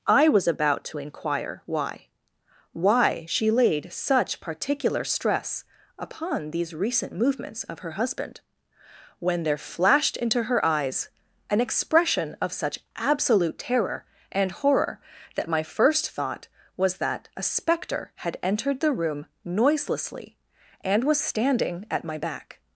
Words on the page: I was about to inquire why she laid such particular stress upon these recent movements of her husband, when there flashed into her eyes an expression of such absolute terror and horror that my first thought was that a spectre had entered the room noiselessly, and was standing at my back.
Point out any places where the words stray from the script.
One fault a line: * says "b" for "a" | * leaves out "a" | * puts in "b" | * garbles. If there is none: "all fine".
* puts in "why"